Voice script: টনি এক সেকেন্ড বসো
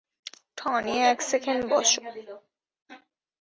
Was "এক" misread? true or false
false